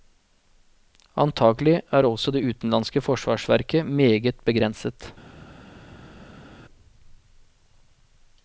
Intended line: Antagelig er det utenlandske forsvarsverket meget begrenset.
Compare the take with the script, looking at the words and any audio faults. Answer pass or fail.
fail